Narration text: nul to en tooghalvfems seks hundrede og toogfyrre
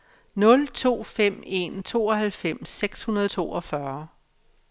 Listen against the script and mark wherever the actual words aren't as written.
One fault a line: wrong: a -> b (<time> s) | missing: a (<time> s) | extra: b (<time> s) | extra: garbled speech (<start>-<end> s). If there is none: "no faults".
extra: fem (1.0 s)